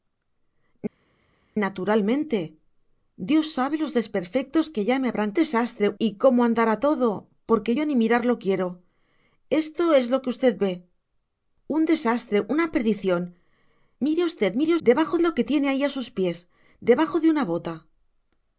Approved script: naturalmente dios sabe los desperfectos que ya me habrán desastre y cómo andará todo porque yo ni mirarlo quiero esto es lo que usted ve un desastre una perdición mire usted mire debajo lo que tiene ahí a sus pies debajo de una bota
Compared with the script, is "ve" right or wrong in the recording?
right